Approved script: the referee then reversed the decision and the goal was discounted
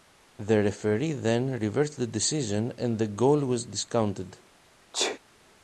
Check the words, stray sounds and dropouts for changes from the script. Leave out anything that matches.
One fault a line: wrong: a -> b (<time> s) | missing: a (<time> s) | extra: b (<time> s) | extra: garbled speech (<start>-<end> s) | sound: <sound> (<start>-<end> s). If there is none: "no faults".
sound: sneeze (4.9-5.2 s)